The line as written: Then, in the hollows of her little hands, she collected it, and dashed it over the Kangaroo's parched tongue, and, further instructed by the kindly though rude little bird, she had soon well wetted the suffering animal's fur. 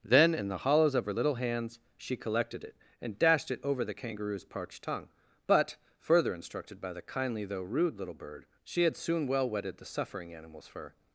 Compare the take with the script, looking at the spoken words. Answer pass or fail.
fail